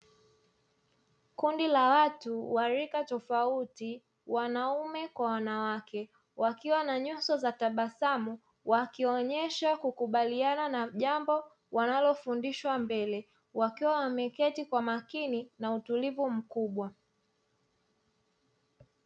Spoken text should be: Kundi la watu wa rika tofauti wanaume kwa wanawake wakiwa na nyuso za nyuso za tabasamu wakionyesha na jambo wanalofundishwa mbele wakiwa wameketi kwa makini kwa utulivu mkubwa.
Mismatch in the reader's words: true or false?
true